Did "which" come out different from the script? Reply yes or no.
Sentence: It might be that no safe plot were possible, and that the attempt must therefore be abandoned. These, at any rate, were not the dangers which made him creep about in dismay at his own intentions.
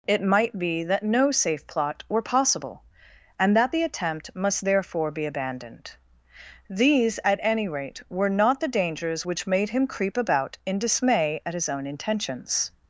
no